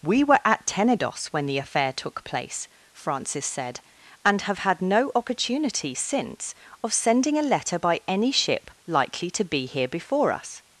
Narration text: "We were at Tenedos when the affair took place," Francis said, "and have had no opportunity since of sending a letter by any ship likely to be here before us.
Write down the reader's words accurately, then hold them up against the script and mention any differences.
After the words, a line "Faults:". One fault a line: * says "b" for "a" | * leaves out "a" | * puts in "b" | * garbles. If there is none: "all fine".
"We were at Tenedos when the affair took place," Francis said, "and have had no opportunity since of sending a letter by any ship likely to be here before us.
Faults:
all fine